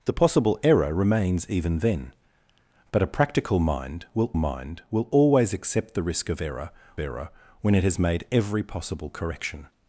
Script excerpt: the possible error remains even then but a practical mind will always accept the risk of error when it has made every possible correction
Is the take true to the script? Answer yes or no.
no